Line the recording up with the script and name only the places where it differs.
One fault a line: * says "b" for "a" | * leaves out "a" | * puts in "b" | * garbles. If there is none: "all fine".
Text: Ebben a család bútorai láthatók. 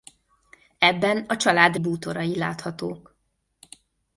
all fine